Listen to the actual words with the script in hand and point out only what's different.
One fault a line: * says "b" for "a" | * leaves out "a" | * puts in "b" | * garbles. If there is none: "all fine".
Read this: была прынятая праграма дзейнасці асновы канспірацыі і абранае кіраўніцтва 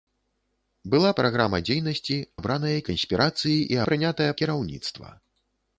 * leaves out "прынятая"
* says "абранае" for "асновы"
* says "прынятая" for "абранае"